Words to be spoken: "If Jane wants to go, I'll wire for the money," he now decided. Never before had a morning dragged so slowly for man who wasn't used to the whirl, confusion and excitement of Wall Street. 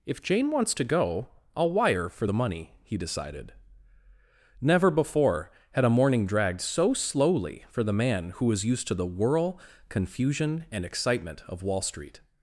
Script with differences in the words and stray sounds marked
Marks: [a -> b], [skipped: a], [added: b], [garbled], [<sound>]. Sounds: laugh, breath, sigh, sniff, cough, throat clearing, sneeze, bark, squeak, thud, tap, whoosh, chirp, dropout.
"If Jane wants to go, I'll wire for the money," he [skipped: now] decided. Never before had a morning dragged so slowly for [added: the] man who [wasn't -> was] used to the whirl, confusion and excitement of Wall Street.